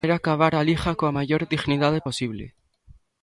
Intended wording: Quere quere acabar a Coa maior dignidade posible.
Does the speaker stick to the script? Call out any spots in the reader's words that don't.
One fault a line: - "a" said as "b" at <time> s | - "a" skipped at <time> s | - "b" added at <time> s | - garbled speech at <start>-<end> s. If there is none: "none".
- "quere" skipped at 0.1 s
- "Liga" added at 0.7 s